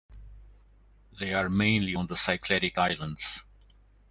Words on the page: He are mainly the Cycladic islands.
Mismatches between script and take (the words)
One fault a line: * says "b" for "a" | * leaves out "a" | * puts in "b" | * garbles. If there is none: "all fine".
* says "They" for "He"
* puts in "on"